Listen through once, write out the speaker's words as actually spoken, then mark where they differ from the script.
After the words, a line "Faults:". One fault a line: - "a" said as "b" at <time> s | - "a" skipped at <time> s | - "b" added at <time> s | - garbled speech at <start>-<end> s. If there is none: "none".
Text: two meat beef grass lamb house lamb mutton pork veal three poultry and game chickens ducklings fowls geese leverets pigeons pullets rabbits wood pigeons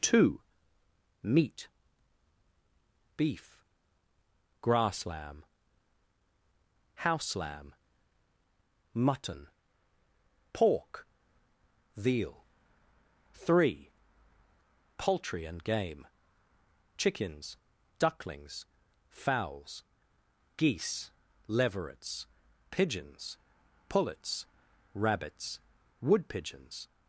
two meat beef grass lamb house lamb mutton pork veal three poultry and game chickens ducklings fowls geese leverets pigeons pullets rabbits wood pigeons
Faults:
none